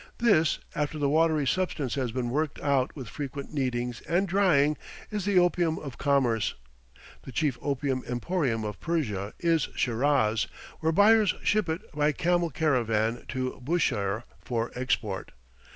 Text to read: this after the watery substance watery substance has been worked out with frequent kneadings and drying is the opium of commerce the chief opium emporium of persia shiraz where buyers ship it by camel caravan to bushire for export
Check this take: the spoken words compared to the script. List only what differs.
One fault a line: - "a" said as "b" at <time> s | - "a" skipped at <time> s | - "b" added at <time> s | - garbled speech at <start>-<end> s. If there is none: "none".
- "watery substance" skipped at 1.9 s
- "is" added at 9.4 s